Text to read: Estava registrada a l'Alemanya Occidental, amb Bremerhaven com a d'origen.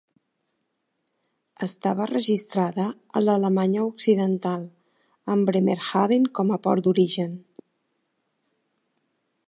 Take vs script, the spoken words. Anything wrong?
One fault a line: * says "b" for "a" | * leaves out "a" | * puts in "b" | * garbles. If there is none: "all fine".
* puts in "port"